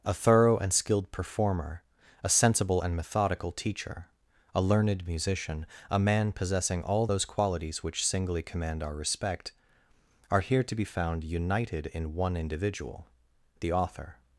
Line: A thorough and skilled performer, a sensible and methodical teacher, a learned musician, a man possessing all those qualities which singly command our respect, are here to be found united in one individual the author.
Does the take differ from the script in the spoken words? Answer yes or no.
no